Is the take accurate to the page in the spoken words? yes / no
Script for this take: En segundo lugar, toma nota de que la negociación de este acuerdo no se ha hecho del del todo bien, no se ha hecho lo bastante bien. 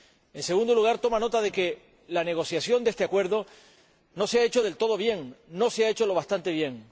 no